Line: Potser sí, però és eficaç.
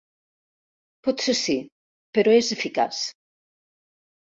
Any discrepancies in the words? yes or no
no